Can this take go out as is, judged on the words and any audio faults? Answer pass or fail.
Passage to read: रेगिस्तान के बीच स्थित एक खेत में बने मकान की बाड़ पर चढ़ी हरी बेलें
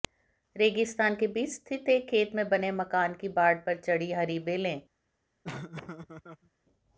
fail